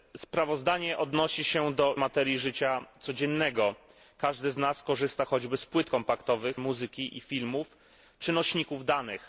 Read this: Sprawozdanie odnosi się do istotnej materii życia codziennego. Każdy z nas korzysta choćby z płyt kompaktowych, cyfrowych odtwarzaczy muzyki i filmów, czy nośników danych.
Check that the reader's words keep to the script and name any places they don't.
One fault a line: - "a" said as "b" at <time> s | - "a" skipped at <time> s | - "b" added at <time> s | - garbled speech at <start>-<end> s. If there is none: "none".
- "istotnej" skipped at 1.9 s
- "cyfrowych odtwarzaczy" skipped at 6.6 s